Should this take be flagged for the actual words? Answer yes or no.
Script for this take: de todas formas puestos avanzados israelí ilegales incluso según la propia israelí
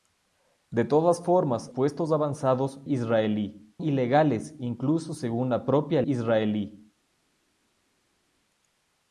no